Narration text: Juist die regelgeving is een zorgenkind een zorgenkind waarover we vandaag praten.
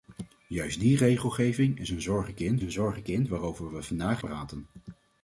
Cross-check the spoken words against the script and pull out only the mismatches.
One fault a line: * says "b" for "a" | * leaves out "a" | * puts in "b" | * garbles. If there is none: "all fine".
all fine